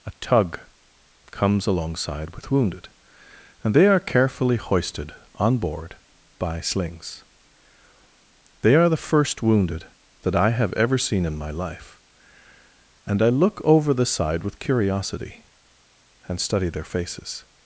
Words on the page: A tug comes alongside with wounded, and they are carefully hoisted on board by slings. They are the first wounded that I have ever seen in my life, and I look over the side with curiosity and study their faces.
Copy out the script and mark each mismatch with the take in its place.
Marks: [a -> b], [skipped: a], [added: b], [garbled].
A tug comes alongside with wounded, and they are carefully hoisted on board by slings. They are the first wounded that I have ever seen in my life, and I look over the side with curiosity and study their faces.